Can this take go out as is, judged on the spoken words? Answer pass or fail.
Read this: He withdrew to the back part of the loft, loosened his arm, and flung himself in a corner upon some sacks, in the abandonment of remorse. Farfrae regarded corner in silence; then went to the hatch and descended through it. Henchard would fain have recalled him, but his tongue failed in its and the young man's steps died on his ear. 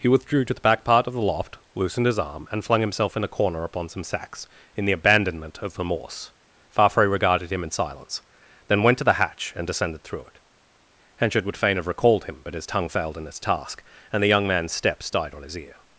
fail